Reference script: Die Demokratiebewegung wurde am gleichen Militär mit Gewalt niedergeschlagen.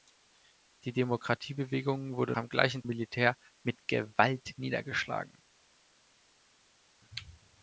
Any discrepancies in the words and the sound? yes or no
no